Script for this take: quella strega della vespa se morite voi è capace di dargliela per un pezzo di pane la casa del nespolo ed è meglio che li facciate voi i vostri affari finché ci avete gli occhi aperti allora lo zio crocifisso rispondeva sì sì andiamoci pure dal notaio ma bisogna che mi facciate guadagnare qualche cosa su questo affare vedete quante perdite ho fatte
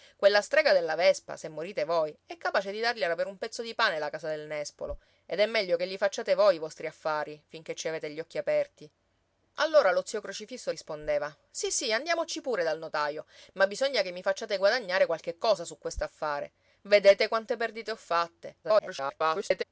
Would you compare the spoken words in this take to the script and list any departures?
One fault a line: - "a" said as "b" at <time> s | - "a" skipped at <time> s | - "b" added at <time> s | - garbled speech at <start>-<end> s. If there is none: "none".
- garbled speech at 18.6-19.6 s